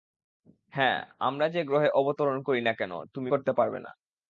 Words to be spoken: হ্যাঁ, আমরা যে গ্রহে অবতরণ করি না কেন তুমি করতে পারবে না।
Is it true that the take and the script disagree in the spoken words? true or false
false